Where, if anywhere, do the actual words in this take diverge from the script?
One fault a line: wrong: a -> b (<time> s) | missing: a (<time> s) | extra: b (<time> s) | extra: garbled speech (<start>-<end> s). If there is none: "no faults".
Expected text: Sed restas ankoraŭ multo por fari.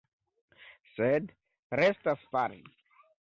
missing: ankoraŭ multo por (2.2 s)